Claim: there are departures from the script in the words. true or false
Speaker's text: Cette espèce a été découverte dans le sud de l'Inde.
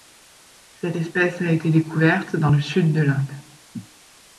false